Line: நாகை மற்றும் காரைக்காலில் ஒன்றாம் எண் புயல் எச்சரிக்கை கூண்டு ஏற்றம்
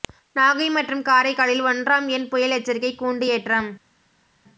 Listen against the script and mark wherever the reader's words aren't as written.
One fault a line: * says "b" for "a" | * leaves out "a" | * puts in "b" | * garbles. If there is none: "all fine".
all fine